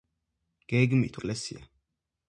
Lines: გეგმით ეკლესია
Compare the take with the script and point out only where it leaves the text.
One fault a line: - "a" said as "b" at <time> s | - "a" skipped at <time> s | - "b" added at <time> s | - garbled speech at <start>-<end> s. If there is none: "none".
none